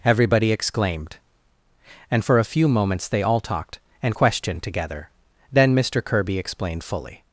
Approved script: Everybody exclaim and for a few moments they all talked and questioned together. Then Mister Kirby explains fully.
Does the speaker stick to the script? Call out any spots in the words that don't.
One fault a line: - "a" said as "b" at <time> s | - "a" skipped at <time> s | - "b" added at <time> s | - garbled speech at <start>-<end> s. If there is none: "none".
- "exclaim" said as "exclaimed" at 0.5 s
- "explains" said as "explained" at 6.4 s